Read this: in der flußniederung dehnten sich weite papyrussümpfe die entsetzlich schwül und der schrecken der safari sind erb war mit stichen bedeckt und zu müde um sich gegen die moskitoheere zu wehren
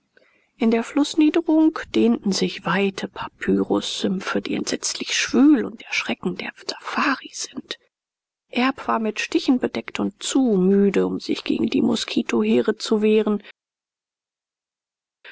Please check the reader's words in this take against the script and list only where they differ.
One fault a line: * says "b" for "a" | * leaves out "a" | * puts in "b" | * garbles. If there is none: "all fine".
all fine